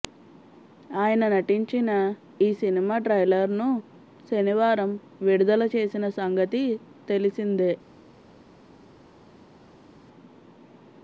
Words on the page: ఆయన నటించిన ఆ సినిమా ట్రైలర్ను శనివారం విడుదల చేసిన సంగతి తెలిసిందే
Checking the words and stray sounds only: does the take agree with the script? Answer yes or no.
no